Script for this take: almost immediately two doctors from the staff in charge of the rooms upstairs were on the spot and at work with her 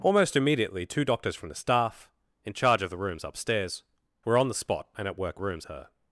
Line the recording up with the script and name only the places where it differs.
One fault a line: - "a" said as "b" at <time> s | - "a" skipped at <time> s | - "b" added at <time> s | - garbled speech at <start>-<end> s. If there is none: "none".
- "with" said as "rooms" at 5.4 s